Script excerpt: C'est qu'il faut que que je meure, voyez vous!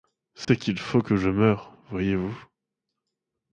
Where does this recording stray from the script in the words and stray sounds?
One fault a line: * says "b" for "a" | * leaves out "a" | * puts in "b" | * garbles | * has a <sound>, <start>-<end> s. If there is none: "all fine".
* has a dropout, 0.4-0.5 s
* leaves out "que"